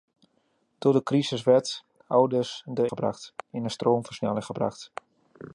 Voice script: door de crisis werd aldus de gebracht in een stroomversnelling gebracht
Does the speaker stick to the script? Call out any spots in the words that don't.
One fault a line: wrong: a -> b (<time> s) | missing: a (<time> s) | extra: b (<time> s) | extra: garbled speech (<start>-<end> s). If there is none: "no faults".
no faults